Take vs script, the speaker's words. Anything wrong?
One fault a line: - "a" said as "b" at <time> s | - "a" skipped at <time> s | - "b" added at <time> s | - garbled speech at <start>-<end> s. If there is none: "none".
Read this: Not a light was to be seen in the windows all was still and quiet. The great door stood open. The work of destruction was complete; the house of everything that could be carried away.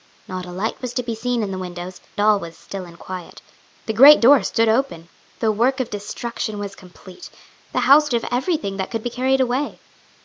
none